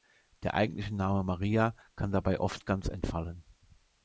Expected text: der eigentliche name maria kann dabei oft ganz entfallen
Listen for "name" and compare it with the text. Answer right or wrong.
right